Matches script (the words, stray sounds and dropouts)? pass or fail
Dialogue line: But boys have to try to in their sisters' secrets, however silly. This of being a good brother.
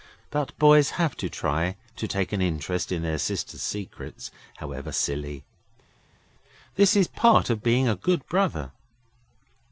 fail